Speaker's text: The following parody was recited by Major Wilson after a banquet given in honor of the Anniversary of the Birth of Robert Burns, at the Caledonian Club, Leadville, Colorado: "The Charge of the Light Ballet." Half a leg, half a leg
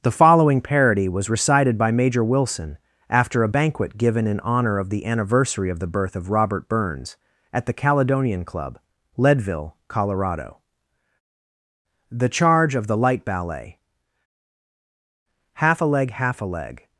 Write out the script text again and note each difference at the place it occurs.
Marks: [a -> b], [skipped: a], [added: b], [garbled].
The following parody was recited by Major Wilson after a banquet given in honor of the Anniversary of the Birth of Robert Burns, at the Caledonian Club, Leadville, Colorado: "The Charge of the Light Ballet." Half a leg, half a leg